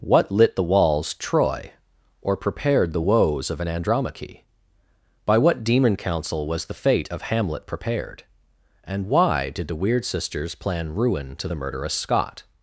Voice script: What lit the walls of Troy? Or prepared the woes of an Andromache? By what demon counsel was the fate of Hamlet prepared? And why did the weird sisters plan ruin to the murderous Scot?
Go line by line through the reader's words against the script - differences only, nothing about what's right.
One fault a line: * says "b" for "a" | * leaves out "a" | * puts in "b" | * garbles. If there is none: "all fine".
* leaves out "of"